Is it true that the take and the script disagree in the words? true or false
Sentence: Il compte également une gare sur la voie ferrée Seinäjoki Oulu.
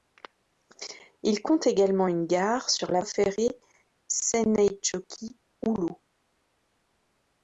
true